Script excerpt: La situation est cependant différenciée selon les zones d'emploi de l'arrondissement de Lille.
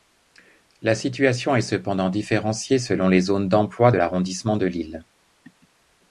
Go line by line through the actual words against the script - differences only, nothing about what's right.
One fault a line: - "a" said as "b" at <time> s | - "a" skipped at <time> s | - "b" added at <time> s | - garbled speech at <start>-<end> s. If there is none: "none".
none